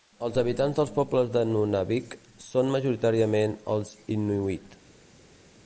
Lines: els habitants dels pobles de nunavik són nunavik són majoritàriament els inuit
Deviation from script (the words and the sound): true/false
true